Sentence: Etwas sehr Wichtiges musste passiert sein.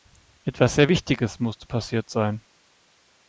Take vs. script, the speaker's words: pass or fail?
pass